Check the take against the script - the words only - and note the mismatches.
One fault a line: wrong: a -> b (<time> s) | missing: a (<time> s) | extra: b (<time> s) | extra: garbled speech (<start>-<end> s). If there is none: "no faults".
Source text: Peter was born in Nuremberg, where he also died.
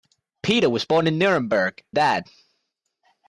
missing: where he also (1.8 s)